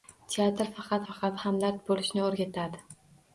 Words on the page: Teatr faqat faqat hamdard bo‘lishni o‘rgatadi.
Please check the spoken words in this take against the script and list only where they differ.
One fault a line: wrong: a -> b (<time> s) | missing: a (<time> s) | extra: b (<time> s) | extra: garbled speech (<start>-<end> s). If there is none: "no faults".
no faults